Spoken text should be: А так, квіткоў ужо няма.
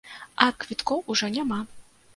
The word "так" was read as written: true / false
false